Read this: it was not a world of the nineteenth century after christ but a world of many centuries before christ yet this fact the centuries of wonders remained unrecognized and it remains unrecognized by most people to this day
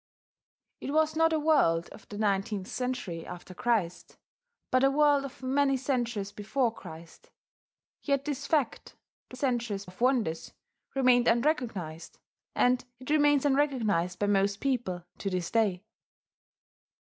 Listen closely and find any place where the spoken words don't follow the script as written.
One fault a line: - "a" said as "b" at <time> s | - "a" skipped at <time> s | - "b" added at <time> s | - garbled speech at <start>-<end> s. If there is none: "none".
none